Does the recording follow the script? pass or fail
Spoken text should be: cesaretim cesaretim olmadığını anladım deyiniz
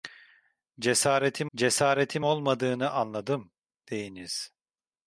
pass